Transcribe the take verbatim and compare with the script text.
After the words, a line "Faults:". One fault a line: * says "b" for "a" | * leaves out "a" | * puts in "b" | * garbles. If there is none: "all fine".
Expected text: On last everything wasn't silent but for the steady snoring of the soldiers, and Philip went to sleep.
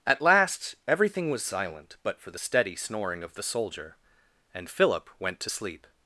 At last everything was silent but for the steady snoring of the soldier, and Philip went to sleep.
Faults:
* says "At" for "On"
* says "was" for "wasn't"
* says "soldier" for "soldiers"